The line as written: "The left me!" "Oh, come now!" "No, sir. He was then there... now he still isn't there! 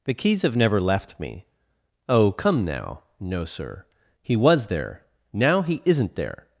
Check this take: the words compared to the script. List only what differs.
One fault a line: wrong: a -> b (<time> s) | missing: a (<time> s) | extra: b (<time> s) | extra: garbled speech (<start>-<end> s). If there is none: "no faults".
extra: keys have never (0.1 s)
missing: then (4.7 s)
missing: still (5.8 s)